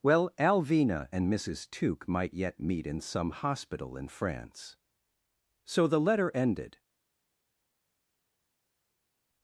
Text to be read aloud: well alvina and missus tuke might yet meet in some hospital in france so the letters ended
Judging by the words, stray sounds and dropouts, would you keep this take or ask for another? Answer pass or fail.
fail